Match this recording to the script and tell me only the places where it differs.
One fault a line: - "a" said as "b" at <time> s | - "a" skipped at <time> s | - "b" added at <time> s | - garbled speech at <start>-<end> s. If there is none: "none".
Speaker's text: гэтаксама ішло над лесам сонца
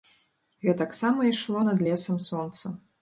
none